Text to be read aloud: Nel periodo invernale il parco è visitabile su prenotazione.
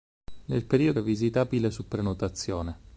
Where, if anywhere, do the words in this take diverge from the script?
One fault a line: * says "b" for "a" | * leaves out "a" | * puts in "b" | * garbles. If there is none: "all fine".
* leaves out "invernale il parco"